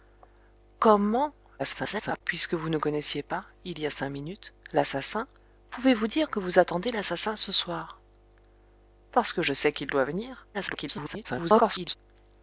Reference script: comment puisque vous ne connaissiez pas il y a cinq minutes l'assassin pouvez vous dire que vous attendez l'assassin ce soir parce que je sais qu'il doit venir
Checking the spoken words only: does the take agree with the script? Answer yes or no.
no